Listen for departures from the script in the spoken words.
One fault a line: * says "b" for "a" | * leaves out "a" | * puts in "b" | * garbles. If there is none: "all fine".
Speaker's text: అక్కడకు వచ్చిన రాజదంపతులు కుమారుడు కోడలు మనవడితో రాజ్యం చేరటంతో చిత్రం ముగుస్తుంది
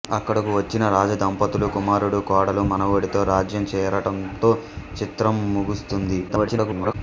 * garbles